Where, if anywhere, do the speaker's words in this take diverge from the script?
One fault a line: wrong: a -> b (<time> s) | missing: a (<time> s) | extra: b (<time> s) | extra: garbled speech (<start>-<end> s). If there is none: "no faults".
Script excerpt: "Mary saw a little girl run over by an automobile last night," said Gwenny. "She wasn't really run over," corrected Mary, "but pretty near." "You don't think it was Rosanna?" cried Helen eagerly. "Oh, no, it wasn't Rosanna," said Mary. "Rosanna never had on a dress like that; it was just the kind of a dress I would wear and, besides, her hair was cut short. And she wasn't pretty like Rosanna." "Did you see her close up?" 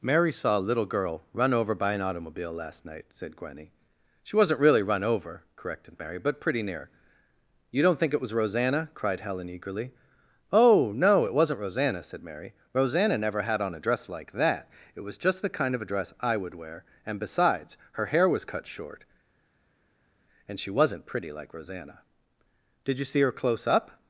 no faults